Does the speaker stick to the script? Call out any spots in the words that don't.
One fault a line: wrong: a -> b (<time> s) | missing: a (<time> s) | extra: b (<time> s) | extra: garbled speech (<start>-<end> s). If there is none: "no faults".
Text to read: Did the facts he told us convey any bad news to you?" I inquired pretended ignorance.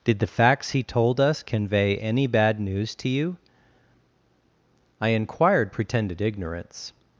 no faults